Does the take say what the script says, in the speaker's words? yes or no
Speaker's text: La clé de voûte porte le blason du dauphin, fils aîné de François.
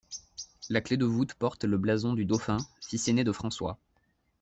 yes